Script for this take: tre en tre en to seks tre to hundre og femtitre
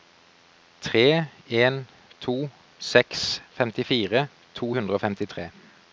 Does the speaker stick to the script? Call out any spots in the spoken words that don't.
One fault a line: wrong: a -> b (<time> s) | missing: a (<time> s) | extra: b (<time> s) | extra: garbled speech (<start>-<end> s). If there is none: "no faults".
missing: tre en (1.9 s)
wrong: tre -> femtifire (3.5 s)